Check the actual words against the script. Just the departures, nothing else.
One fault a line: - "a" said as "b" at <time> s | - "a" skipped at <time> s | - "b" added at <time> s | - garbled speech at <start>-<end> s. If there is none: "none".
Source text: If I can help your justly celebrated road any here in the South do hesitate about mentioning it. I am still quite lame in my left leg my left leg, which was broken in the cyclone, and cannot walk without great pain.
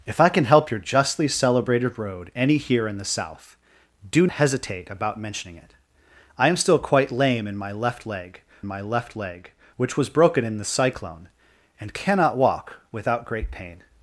none